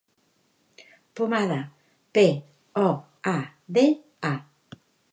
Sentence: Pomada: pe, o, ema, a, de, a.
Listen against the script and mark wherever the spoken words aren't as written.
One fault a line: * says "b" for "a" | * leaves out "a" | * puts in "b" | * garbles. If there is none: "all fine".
* leaves out "ema"